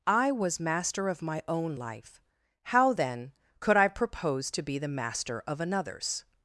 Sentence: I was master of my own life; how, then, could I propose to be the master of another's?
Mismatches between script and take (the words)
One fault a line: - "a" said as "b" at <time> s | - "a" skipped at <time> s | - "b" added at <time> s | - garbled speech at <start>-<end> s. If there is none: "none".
none